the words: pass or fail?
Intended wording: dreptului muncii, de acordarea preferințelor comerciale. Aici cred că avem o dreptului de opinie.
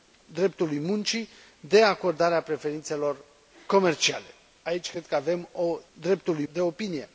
pass